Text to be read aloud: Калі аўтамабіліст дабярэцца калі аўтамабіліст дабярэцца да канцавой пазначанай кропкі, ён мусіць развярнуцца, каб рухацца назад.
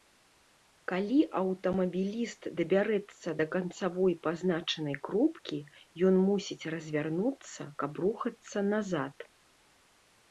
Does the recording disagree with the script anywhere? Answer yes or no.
yes